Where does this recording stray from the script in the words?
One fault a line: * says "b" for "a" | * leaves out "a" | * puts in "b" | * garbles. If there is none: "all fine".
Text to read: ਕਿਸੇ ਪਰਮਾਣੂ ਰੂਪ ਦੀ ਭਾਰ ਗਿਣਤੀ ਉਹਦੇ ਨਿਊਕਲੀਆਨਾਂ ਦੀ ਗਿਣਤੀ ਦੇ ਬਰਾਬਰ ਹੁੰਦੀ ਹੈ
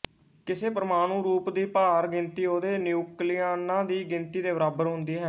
all fine